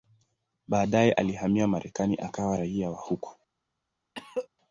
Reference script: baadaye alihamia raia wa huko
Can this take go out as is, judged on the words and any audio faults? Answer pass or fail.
fail